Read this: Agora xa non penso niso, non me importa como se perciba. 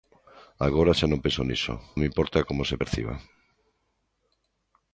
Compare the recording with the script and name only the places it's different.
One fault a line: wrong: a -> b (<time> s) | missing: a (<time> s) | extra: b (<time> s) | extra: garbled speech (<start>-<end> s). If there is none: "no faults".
missing: non (1.7 s)